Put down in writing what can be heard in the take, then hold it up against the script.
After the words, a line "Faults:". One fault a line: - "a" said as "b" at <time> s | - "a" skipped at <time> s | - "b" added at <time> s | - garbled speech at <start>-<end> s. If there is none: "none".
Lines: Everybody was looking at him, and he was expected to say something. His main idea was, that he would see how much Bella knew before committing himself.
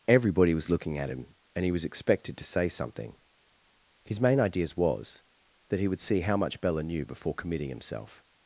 Everybody was looking at him, and he was expected to say something. His main ideas was, that he would see how much Bella knew before committing himself.
Faults:
- "idea" said as "ideas" at 4.4 s